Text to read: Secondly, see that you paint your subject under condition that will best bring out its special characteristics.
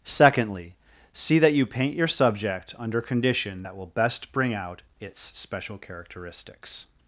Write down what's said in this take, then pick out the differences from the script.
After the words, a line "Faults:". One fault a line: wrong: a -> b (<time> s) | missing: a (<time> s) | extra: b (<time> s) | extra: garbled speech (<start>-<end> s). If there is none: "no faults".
Secondly, see that you paint your subject under condition that will best bring out its special characteristics.
Faults:
no faults